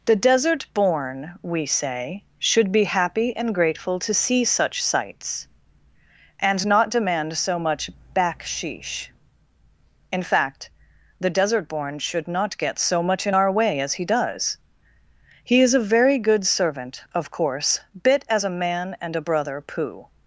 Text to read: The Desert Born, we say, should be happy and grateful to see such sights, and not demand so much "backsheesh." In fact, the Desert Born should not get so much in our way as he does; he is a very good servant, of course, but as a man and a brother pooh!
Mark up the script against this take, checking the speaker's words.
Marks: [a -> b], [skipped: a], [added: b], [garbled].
The Desert Born, we say, should be happy and grateful to see such sights, and not demand so much "backsheesh." In fact, the Desert Born should not get so much in our way as he does; he is a very good servant, of course, [but -> bit] as a man and a brother pooh!